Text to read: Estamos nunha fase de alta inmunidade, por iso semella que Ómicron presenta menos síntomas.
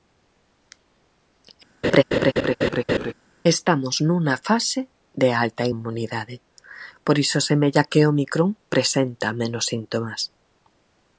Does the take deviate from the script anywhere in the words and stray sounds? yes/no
yes